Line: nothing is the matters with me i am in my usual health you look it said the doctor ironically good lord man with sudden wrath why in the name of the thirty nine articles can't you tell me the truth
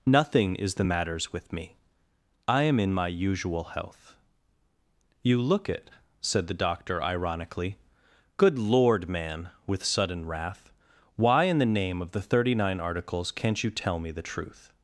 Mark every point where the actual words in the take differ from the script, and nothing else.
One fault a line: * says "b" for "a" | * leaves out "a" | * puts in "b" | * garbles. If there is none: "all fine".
all fine